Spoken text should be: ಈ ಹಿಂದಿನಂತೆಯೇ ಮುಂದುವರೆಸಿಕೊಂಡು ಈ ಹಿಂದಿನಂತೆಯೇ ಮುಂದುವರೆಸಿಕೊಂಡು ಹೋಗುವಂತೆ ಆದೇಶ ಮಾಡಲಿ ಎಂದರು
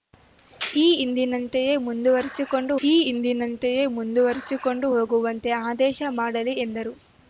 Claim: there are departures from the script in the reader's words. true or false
false